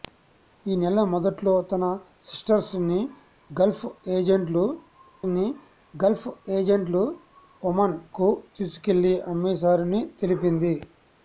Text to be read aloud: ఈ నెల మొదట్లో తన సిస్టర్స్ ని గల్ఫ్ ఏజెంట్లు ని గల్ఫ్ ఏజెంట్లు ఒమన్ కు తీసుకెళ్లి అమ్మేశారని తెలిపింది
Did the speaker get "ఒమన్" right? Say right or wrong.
right